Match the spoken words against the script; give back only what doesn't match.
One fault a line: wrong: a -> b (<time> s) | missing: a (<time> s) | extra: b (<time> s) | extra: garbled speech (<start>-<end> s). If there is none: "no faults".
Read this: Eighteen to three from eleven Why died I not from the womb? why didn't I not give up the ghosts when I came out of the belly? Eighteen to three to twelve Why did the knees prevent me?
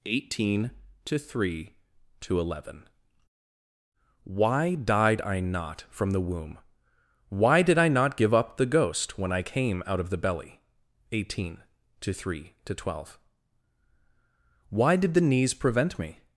wrong: from -> to (2.2 s)
wrong: didn't -> did (7.6 s)
wrong: ghosts -> ghost (8.7 s)